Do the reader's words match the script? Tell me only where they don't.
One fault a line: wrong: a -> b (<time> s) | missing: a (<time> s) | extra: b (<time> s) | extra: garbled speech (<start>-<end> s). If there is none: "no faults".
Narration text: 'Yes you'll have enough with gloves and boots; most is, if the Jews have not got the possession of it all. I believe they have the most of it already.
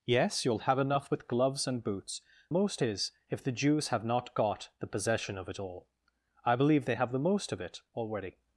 no faults